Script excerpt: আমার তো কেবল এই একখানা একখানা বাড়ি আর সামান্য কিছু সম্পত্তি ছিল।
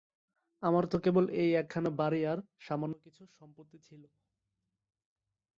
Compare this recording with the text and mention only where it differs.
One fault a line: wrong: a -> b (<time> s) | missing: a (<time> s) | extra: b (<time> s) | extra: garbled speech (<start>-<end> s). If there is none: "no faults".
missing: একখানা (1.9 s)